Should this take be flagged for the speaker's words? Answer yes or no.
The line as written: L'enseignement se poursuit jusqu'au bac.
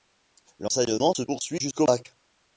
no